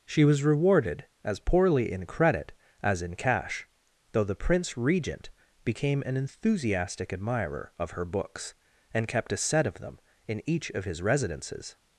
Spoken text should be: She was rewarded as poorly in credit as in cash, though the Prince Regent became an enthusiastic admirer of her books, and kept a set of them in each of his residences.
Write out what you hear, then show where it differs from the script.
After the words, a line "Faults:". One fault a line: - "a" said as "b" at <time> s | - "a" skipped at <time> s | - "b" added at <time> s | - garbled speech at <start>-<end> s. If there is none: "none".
She was rewarded as poorly in credit as in cash, though the Prince Regent became an enthusiastic admirer of her books, and kept a set of them in each of his residences.
Faults:
none